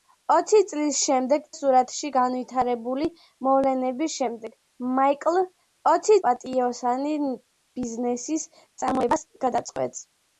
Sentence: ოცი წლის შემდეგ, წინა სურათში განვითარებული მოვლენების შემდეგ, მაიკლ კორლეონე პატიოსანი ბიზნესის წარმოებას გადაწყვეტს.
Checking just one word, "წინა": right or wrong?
wrong